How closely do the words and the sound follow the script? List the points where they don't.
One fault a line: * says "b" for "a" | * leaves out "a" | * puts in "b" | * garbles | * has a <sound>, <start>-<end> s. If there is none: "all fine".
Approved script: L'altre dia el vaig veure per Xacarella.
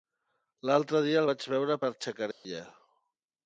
* has a dropout, 2.3-2.4 s